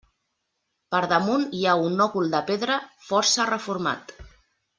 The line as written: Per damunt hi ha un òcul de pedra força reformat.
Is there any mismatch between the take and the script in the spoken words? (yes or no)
no